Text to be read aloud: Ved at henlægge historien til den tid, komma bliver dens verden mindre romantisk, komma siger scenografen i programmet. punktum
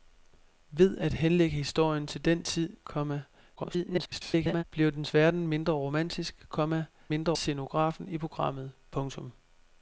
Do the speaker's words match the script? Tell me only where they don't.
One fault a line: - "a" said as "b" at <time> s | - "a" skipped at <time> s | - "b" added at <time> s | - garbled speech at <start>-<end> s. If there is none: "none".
- garbled speech at 3.6-4.6 s
- "siger" said as "mindre" at 7.1 s